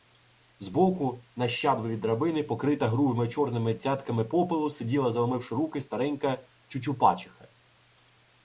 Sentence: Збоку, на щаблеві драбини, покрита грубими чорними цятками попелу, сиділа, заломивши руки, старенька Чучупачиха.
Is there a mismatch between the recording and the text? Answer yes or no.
no